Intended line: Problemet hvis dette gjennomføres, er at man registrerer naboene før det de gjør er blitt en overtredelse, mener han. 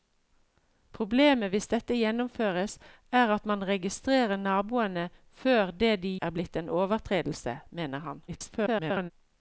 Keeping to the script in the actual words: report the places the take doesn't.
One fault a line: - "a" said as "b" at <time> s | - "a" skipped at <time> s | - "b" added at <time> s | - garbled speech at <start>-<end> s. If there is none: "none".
- "gjør" skipped at 6.1 s
- garbled speech at 8.3-9.1 s